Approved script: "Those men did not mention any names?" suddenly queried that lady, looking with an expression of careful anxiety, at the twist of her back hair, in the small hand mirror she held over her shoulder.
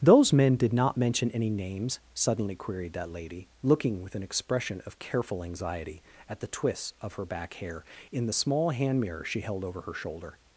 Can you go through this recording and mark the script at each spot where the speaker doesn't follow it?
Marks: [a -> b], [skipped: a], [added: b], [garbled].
"Those men did not mention any names?" suddenly queried that lady, looking with an expression of careful anxiety, at the [twist -> twists] of her back hair, in the small hand mirror she held over her shoulder.